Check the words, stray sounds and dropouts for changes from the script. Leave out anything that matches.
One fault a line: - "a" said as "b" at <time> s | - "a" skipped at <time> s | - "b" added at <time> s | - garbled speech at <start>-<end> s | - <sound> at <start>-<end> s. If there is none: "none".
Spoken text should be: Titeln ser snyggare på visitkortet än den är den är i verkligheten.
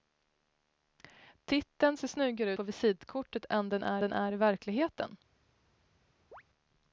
- chirp at 6.3-6.4 s